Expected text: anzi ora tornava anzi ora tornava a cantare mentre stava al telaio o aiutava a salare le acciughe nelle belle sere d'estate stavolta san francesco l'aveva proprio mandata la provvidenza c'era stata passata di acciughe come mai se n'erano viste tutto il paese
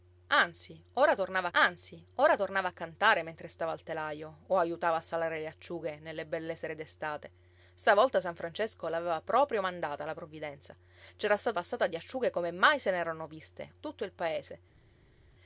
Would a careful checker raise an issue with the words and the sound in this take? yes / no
no